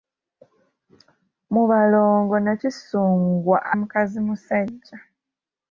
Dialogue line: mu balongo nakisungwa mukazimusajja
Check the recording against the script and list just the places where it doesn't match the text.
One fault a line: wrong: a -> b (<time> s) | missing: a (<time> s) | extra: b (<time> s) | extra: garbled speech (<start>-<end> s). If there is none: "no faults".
no faults